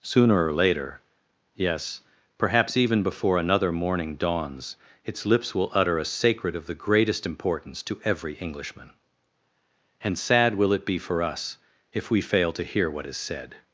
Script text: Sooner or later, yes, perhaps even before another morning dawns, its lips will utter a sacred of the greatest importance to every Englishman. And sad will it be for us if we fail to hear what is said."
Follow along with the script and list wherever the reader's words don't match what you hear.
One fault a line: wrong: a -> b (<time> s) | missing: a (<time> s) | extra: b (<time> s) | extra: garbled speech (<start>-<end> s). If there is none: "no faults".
no faults